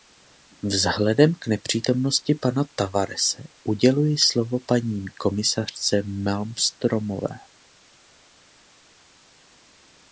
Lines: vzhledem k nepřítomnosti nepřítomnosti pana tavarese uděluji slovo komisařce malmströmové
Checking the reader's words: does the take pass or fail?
fail